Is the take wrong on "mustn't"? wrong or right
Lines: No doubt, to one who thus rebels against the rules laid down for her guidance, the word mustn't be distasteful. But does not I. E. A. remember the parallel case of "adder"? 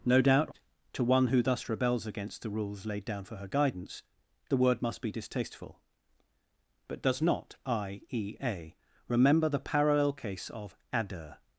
wrong